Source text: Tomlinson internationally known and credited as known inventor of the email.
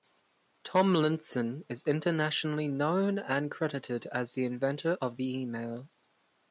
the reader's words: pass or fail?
fail